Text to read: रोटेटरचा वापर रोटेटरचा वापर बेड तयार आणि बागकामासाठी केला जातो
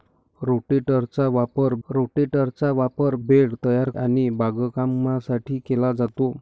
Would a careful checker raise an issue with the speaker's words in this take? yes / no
no